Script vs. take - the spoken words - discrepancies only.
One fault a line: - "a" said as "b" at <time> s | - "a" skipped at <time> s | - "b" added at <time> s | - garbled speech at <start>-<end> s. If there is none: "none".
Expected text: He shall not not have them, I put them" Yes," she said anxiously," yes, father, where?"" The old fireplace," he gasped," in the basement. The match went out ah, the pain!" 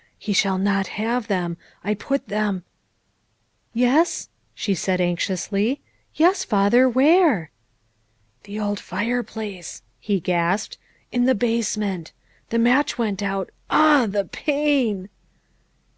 - "not" skipped at 0.9 s